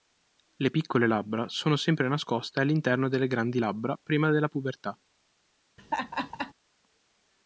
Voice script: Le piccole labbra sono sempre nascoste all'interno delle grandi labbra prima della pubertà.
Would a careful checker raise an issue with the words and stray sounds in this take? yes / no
yes